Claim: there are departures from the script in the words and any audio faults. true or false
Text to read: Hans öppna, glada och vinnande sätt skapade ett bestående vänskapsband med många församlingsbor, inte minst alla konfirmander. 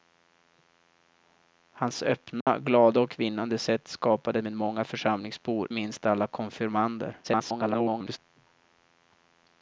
true